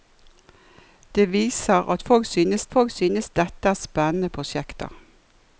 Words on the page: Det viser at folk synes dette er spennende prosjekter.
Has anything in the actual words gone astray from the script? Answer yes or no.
yes